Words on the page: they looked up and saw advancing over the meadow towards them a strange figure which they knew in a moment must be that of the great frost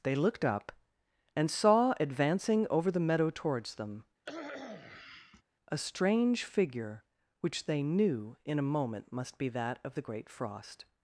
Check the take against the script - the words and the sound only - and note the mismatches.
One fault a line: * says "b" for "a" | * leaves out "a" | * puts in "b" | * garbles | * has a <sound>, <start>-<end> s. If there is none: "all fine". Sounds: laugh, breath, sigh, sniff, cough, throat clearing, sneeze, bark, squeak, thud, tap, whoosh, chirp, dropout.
* has a cough, 4.3-5.4 s